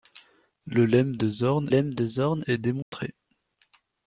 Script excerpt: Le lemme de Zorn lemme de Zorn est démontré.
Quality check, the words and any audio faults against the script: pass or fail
fail